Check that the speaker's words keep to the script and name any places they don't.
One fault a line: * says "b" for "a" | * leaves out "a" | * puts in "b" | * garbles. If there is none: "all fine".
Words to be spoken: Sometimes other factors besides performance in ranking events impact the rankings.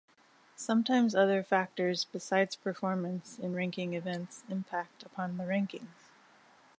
* puts in "upon"